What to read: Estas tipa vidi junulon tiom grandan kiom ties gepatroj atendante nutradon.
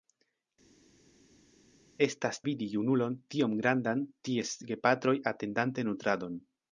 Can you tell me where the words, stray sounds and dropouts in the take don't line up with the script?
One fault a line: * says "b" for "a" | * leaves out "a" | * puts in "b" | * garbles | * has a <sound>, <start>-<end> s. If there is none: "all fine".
* leaves out "tipa"
* leaves out "kiom"